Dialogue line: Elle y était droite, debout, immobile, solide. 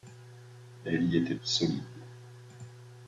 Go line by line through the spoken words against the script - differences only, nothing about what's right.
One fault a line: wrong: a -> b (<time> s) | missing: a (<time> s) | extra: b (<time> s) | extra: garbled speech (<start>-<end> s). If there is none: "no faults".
missing: droite debout immobile (1.3 s)